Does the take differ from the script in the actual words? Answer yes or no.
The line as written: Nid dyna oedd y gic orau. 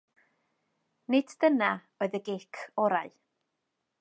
no